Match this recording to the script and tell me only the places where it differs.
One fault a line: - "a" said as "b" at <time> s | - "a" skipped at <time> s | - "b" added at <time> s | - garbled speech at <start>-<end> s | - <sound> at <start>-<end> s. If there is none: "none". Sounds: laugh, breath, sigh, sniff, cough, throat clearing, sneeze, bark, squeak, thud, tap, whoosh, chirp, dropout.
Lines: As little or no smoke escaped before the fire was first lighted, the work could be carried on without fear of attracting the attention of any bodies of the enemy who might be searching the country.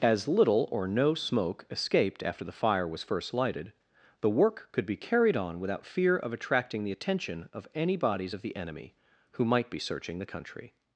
- "before" said as "after" at 2.2 s